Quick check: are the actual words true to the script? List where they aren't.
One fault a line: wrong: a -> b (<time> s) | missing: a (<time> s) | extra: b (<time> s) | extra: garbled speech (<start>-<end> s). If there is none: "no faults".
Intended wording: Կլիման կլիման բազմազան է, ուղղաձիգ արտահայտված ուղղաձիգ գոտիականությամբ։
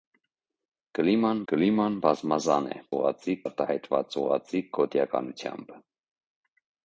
no faults